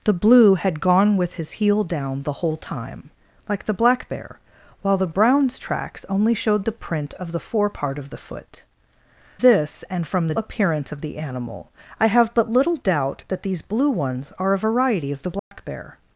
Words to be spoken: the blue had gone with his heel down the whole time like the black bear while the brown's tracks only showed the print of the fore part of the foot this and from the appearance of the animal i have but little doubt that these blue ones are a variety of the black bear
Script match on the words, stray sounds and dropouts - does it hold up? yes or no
no